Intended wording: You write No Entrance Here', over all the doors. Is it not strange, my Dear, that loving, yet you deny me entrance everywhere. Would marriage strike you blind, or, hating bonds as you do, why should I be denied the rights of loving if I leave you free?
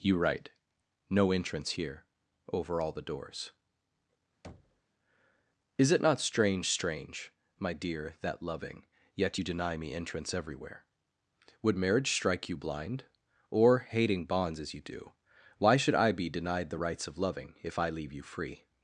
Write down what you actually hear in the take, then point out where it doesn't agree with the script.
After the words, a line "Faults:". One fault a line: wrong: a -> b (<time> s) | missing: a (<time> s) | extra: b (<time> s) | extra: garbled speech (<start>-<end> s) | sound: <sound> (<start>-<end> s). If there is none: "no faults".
You write No Entrance Here', over all the doors. Is it not strange strange, my Dear, that loving, yet you deny me entrance everywhere. Would marriage strike you blind, or, hating bonds as you do, why should I be denied the rights of loving if I leave you free?
Faults:
sound: thud (4.4-4.8 s)
extra: strange (6.7 s)